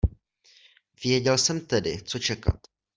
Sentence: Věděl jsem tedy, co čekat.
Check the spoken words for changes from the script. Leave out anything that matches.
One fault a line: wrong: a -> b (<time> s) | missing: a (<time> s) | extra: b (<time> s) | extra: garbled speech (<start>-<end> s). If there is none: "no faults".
no faults